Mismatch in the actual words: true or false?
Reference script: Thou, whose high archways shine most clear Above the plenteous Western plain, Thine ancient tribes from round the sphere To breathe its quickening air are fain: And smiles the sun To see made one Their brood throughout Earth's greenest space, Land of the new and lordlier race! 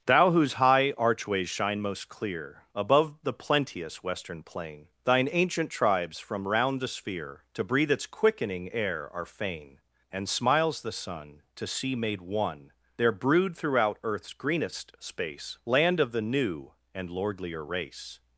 false